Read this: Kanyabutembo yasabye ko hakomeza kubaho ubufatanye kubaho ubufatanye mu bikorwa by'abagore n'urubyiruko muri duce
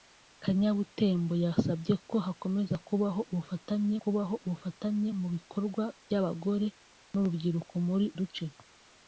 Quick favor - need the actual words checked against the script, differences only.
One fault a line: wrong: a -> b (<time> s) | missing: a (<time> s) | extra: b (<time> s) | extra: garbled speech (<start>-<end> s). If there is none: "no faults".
no faults